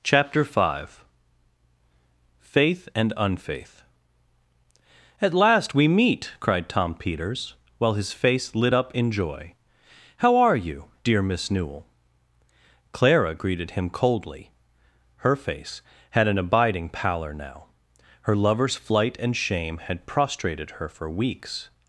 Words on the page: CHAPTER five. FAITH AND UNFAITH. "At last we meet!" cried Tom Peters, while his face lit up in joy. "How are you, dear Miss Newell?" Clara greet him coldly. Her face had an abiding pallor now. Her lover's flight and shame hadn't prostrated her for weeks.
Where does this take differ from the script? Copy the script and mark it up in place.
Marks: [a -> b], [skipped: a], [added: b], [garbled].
CHAPTER five. FAITH AND UNFAITH. "At last we meet!" cried Tom Peters, while his face lit up in joy. "How are you, dear Miss Newell?" Clara [greet -> greeted] him coldly. Her face had an abiding pallor now. Her lover's flight and shame [hadn't -> had] prostrated her for weeks.